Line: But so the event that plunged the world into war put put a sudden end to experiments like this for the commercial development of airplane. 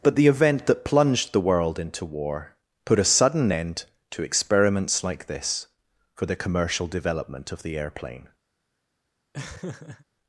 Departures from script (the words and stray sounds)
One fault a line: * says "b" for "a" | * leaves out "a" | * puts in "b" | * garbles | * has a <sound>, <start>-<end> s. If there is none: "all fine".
* leaves out "so"
* leaves out "put"
* puts in "the"
* has a laugh, 9.3-10.1 s